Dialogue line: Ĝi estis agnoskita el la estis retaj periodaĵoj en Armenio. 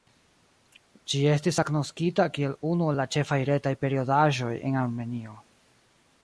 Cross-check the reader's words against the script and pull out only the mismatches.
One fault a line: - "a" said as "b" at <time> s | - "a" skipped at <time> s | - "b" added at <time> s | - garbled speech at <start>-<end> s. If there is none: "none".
- "kiel unu" added at 2.3 s
- "estis" said as "ĉefaj" at 3.2 s